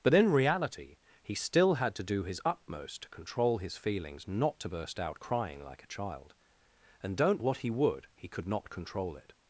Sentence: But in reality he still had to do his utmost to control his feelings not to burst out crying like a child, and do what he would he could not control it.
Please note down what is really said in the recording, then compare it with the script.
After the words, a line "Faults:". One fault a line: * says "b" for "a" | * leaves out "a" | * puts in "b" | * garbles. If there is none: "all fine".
But in reality he still had to do his utmost to control his feelings not to burst out crying like a child, and don't what he would he could not control it.
Faults:
* says "don't" for "do"